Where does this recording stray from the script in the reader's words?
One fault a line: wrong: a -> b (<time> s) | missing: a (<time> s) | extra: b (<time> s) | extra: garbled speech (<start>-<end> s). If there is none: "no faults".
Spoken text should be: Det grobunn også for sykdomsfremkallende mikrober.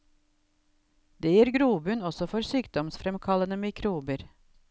extra: gir (1.4 s)